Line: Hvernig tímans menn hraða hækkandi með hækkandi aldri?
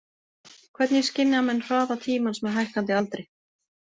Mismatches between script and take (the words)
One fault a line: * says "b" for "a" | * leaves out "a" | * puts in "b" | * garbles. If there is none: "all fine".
* says "skynja" for "tímans"
* says "tímans" for "hækkandi"